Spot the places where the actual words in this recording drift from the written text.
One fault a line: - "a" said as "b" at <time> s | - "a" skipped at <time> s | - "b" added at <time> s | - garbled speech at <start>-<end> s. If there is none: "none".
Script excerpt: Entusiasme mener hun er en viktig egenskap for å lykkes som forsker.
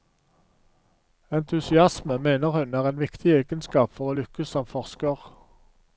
none